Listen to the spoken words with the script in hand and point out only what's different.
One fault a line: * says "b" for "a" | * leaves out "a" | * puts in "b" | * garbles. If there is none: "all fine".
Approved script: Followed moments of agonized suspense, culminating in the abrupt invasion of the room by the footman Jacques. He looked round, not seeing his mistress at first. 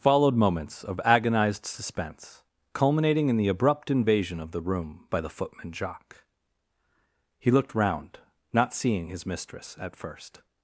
all fine